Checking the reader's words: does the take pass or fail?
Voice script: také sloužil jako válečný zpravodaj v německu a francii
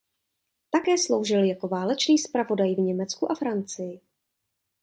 pass